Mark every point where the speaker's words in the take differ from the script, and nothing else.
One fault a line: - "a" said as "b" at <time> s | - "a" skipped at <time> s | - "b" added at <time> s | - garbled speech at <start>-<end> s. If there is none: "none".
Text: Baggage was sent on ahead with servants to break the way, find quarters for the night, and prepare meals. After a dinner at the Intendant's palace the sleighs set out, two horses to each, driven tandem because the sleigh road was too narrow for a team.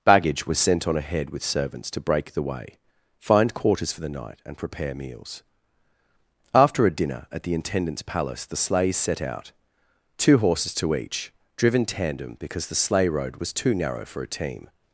none